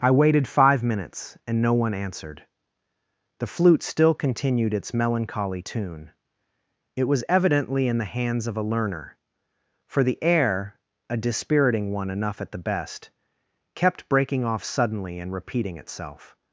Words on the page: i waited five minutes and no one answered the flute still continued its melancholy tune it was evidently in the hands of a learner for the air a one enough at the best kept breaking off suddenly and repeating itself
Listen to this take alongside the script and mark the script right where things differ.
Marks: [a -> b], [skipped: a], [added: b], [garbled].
i waited five minutes and no one answered the flute still continued its melancholy tune it was evidently in the hands of a learner for the air a [added: dispiriting] one enough at the best kept breaking off suddenly and repeating itself